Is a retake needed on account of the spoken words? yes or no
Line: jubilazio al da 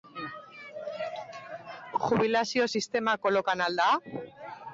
yes